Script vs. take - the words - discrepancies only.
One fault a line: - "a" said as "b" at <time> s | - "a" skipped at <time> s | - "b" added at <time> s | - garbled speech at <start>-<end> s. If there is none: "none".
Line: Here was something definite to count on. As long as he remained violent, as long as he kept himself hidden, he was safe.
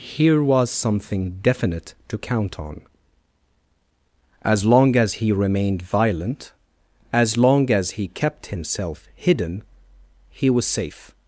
none